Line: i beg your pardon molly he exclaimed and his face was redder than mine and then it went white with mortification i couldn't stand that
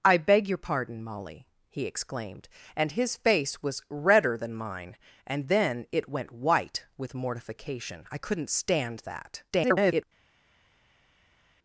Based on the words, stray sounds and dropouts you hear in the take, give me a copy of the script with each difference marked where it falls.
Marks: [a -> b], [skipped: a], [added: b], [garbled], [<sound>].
i beg your pardon molly he exclaimed and his face was redder than mine and then it went white with mortification i couldn't stand that [garbled]